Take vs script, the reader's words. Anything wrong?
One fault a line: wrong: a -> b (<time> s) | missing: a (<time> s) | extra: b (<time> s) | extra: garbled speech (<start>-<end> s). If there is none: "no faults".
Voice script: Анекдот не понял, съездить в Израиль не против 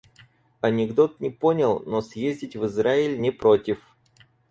extra: но (1.9 s)